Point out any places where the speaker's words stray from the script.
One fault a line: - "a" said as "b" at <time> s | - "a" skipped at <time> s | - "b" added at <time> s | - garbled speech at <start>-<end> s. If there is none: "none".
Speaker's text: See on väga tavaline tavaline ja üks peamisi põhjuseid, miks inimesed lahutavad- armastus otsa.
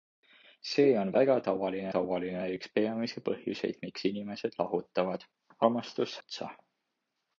none